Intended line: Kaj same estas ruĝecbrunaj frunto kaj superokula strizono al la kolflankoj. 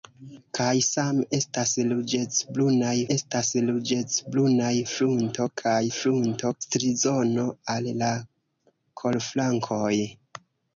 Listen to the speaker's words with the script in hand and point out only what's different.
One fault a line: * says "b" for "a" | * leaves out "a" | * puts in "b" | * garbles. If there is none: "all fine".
* puts in "estas ruĝecbrunaj"
* says "frunto" for "superokula"